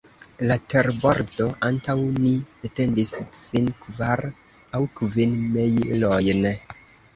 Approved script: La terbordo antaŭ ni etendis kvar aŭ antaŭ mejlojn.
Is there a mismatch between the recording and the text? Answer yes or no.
yes